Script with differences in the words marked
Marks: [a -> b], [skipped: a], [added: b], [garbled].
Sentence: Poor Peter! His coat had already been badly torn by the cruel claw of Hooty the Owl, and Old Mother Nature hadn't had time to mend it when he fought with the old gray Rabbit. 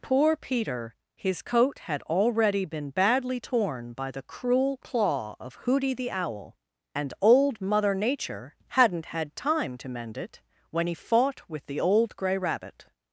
Poor Peter! His coat had already been badly torn by the cruel claw of Hooty the Owl, and Old Mother Nature hadn't had time to mend it when he fought with the old gray Rabbit.